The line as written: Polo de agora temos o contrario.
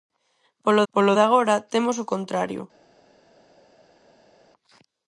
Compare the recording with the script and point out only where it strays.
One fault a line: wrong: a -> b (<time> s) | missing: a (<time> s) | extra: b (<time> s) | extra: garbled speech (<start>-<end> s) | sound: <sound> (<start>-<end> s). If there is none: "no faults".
extra: polo (0.9 s)